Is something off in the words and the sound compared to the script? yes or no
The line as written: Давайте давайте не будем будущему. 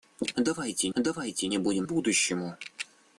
no